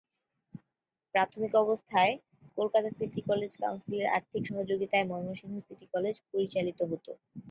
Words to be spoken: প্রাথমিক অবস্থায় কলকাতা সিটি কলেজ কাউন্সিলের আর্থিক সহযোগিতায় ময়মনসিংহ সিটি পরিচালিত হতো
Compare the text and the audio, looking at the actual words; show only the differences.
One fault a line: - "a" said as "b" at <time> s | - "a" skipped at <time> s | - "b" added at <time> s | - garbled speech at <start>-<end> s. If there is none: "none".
- "কলেজ" added at 5.9 s